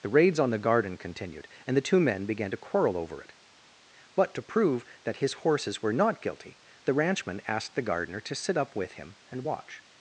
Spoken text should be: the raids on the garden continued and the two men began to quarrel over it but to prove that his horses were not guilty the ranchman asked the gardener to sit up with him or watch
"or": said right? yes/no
no